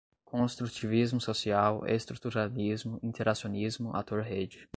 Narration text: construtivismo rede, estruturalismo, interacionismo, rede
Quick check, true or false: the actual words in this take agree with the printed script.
false